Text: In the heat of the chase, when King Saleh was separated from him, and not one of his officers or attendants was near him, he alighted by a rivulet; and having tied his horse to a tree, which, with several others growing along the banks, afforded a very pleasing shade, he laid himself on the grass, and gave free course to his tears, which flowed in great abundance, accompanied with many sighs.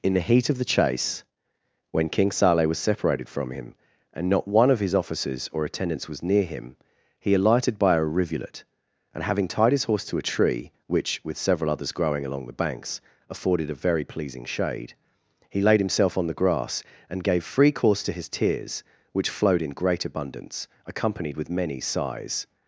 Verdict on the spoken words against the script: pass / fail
pass